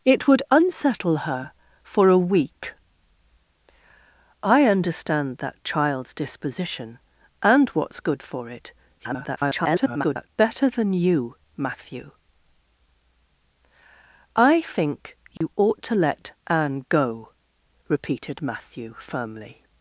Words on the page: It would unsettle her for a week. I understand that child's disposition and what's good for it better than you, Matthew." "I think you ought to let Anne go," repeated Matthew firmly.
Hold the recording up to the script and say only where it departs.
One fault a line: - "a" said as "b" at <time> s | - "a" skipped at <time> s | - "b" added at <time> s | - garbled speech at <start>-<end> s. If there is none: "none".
- garbled speech at 9.0-10.3 s